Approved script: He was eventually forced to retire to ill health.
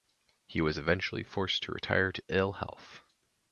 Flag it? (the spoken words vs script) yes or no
no